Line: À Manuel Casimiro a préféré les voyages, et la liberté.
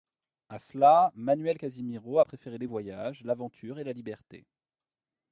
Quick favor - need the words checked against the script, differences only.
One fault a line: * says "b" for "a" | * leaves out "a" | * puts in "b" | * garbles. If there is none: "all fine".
* puts in "cela"
* puts in "l'aventure"